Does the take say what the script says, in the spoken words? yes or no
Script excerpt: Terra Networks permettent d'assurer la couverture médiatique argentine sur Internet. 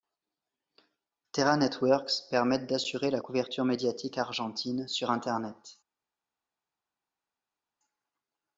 yes